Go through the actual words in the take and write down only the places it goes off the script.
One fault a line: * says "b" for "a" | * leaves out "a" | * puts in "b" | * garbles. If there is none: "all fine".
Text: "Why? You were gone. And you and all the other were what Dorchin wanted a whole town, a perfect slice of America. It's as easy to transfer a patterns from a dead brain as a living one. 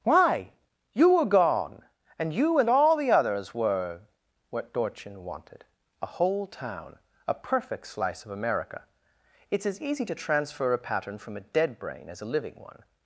* says "others" for "other"
* says "pattern" for "patterns"